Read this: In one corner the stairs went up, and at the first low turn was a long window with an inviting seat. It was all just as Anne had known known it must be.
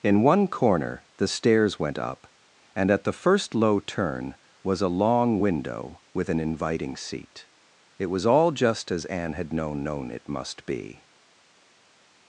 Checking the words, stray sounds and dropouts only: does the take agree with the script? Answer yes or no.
yes